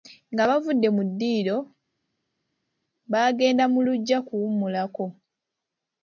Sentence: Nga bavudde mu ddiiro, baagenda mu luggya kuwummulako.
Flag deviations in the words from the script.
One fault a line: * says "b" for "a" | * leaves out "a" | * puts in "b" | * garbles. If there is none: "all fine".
all fine